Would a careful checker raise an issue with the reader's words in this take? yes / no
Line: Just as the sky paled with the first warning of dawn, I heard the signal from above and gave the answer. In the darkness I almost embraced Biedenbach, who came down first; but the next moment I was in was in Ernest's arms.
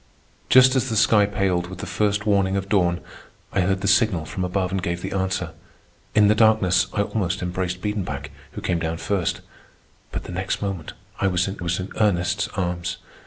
no